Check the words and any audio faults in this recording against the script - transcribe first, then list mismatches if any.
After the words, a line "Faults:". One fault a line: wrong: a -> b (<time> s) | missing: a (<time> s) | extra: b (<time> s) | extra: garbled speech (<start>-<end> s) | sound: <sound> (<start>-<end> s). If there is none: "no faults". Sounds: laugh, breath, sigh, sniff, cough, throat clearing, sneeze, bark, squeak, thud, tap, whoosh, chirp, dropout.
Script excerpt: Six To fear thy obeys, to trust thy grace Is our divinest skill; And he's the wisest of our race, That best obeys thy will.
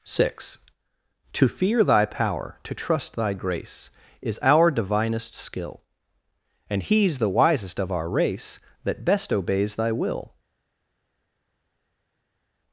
Six To fear thy power, to trust thy grace Is our divinest skill; And he's the wisest of our race, That best obeys thy will.
Faults:
wrong: obeys -> power (2.1 s)